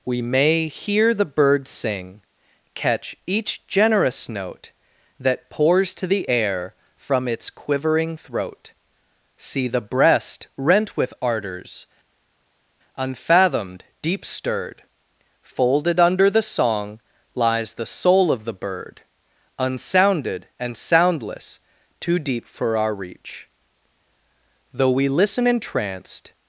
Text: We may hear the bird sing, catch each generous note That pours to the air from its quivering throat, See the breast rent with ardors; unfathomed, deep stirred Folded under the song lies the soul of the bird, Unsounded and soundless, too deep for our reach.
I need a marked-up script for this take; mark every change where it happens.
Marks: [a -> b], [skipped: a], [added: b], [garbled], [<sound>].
We may hear the bird sing, catch each generous note That pours to the air from its quivering throat, See the breast rent with ardors; unfathomed, deep stirred Folded under the song lies the soul of the bird, Unsounded and soundless, too deep for our reach. [added: Though we listen entranced]